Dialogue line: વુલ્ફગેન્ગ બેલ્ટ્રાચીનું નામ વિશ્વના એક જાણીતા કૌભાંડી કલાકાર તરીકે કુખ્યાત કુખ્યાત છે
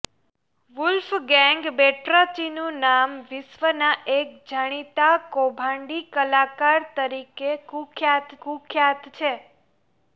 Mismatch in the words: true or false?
false